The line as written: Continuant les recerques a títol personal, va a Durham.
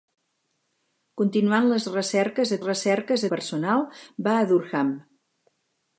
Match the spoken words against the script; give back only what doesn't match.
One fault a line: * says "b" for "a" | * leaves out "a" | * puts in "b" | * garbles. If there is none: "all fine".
* says "recerques" for "títol"